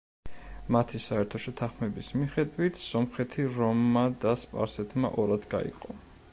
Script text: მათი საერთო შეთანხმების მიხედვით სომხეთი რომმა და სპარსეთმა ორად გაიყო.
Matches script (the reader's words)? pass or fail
pass